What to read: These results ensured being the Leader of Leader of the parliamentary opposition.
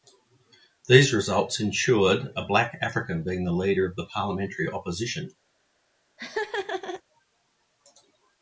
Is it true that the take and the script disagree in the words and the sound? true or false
true